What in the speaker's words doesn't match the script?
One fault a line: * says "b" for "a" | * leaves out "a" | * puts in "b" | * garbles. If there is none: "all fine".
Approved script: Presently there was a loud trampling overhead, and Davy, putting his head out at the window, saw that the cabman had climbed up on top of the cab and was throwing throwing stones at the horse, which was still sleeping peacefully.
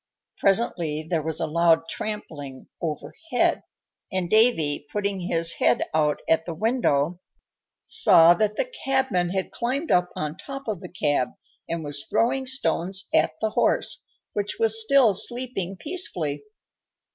* leaves out "throwing"